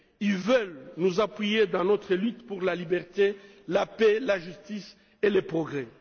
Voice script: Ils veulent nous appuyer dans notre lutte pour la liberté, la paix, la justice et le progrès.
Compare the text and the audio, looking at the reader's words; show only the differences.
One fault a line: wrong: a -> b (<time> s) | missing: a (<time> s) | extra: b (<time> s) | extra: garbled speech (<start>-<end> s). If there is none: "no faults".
no faults